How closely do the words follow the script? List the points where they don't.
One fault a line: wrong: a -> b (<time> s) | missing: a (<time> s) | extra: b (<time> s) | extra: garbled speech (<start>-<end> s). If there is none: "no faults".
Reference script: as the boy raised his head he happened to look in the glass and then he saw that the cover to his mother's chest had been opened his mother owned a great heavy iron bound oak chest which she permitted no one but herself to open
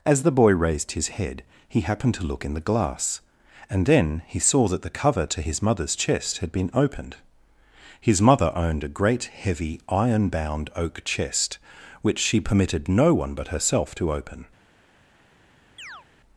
no faults